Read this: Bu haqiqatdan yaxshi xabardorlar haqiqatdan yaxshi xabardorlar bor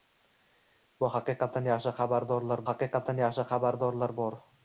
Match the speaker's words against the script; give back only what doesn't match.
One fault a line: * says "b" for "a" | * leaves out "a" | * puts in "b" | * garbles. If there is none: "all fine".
all fine